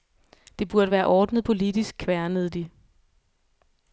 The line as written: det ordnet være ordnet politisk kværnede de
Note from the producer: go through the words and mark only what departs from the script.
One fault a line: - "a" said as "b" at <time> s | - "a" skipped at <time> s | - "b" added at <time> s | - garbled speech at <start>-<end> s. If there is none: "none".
- "ordnet" said as "burde" at 0.7 s